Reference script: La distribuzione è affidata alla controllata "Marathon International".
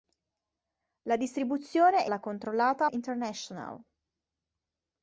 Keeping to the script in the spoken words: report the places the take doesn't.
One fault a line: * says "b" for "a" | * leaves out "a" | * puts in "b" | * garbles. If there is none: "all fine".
* leaves out "affidata"
* leaves out "Marathon"